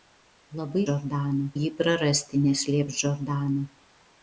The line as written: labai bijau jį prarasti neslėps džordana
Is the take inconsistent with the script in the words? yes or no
yes